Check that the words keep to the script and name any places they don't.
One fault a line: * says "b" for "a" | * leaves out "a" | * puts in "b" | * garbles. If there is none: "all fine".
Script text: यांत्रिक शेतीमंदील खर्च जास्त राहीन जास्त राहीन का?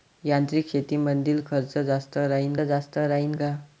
all fine